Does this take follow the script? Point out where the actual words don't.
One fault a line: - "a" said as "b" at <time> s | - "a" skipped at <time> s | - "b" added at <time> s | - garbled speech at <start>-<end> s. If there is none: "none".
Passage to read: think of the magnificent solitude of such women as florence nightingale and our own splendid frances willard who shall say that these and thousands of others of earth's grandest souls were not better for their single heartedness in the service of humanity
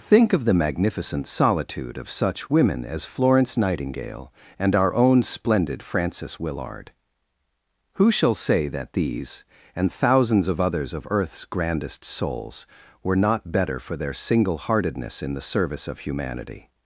none